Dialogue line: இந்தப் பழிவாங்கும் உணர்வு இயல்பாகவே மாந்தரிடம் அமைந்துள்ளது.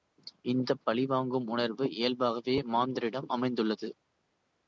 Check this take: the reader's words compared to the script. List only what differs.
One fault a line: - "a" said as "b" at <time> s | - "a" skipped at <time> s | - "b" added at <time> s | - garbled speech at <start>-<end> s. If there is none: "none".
none